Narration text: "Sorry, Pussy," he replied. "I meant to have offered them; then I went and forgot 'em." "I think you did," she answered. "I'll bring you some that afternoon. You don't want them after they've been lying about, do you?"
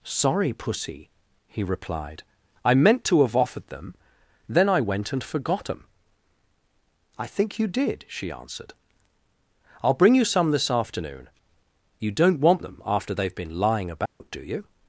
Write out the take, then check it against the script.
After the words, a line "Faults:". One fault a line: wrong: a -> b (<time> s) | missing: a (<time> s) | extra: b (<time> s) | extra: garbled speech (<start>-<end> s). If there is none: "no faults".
"Sorry, Pussy," he replied. "I meant to have offered them; then I went and forgot 'em." "I think you did," she answered. "I'll bring you some this afternoon. You don't want them after they've been lying about, do you?"
Faults:
wrong: that -> this (10.5 s)